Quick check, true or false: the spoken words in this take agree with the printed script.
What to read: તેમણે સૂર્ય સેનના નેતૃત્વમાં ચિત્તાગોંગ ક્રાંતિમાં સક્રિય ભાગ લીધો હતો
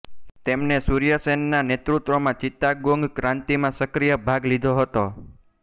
true